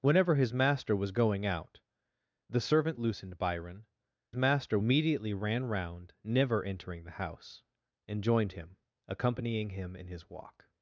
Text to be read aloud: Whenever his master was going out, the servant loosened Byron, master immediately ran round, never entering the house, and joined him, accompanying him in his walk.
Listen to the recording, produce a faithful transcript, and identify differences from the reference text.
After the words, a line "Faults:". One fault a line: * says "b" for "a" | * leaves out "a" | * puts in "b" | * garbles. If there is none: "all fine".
Whenever his master was going out, the servant loosened Byron, master immediately ran round, never entering the house, and joined him, accompanying him in his walk.
Faults:
all fine